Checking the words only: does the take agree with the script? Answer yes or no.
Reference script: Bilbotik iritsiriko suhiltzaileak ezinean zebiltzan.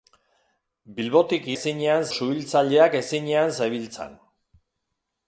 no